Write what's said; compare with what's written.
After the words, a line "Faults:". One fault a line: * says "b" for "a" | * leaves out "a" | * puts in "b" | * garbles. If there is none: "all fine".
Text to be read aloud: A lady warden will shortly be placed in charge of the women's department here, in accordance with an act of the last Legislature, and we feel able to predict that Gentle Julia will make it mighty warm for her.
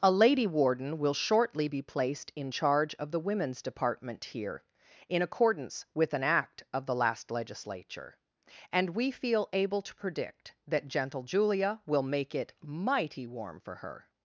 A lady warden will shortly be placed in charge of the women's department here, in accordance with an act of the last Legislature, and we feel able to predict that Gentle Julia will make it mighty warm for her.
Faults:
all fine